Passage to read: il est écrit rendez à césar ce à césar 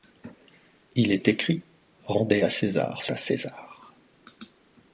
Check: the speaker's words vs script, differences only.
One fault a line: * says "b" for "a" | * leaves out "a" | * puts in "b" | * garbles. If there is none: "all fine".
all fine